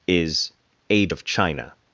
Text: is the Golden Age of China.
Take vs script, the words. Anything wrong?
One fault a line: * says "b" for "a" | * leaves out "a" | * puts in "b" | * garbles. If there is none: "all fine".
* leaves out "the Golden"